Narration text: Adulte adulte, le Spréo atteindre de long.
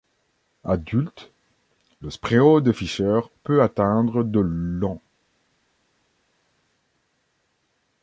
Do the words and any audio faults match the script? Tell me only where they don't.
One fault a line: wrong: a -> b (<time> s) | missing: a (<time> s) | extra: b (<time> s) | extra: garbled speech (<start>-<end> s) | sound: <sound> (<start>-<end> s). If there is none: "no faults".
missing: adulte (1.3 s)
extra: de Fischer peut (2.6 s)